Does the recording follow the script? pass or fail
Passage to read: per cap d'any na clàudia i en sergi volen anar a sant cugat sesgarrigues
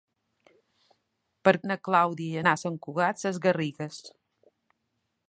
fail